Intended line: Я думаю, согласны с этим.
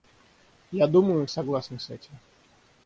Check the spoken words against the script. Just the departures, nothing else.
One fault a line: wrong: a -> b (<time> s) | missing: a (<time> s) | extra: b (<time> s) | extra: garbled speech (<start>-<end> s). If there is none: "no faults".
no faults